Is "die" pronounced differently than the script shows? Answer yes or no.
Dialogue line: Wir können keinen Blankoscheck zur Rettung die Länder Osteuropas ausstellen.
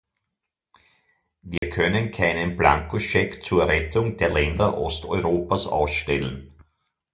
yes